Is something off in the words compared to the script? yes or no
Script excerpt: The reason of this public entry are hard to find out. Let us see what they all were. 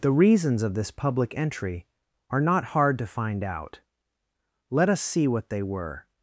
yes